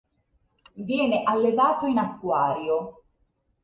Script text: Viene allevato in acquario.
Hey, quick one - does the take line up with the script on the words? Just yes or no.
yes